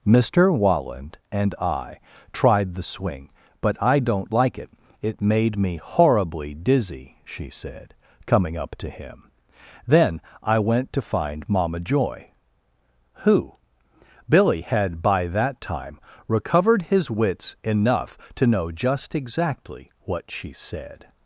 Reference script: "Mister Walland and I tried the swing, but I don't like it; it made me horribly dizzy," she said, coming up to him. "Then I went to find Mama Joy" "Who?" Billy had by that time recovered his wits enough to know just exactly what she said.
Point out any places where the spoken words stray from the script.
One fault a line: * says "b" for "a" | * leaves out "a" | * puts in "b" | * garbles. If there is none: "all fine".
all fine